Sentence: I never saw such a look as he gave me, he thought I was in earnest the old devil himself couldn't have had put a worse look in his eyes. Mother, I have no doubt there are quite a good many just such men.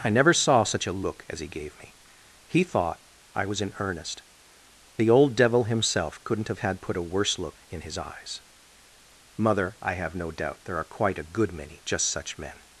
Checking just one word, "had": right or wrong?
right